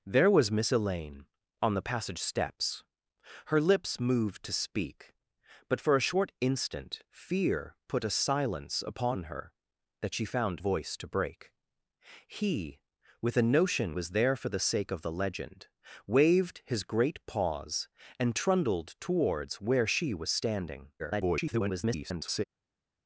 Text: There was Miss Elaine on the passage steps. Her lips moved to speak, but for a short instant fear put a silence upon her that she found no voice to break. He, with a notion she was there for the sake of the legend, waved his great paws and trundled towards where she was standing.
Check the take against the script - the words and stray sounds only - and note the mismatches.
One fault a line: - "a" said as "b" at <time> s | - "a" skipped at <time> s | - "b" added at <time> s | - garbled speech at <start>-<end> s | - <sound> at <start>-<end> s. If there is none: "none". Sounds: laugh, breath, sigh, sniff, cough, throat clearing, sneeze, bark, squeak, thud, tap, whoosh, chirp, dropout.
- "no" skipped at 10.6 s
- "she" skipped at 14.0 s
- garbled speech at 21.0-22.4 s